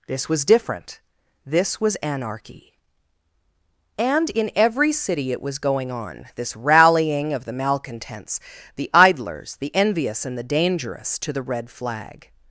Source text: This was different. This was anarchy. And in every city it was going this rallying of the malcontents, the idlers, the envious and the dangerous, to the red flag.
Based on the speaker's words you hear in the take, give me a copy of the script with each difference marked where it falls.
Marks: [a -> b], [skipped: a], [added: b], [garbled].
This was different. This was anarchy. And in every city it was going [added: on] this rallying of the malcontents, the idlers, the envious and the dangerous, to the red flag.